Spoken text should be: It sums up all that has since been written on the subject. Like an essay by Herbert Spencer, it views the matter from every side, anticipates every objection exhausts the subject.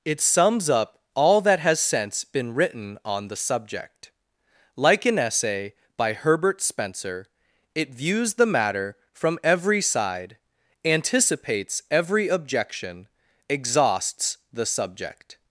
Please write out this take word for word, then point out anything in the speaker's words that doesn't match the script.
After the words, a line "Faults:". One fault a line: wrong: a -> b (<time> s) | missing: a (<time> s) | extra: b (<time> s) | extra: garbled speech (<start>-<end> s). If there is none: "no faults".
It sums up all that has since been written on the subject. Like an essay by Herbert Spencer, it views the matter from every side, anticipates every objection exhausts the subject.
Faults:
no faults